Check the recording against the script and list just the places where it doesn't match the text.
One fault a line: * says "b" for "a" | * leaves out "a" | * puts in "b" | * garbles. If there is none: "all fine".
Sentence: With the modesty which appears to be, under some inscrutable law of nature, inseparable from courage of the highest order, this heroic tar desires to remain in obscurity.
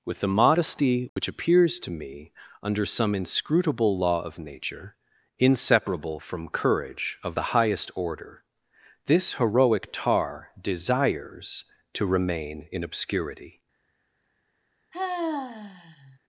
* says "me" for "be"